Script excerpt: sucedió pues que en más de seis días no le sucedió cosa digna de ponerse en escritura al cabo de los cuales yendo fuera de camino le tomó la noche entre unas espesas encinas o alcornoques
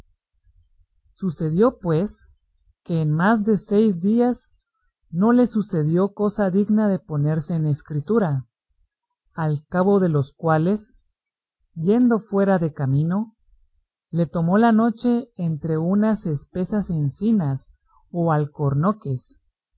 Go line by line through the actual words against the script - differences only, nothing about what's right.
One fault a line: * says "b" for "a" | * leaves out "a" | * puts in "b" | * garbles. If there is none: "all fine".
all fine